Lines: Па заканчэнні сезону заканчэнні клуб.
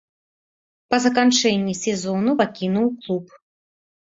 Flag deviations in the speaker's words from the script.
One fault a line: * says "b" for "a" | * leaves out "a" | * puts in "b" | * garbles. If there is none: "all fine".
* says "пакінуў" for "заканчэнні"